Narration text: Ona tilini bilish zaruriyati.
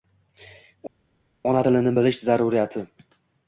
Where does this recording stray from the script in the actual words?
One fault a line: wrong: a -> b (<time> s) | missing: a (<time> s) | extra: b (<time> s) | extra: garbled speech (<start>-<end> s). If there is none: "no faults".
no faults